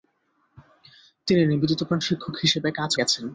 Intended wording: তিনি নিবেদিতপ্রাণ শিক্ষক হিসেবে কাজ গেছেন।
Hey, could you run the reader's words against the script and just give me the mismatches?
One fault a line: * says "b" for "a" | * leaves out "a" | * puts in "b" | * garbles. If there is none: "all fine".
all fine